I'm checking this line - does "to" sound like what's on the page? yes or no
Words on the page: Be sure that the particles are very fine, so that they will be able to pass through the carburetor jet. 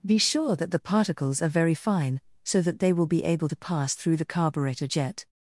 yes